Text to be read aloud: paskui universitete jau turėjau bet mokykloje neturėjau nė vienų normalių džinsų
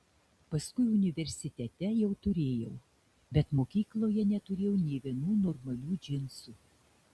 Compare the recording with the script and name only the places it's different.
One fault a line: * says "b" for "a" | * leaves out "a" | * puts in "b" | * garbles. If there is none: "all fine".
all fine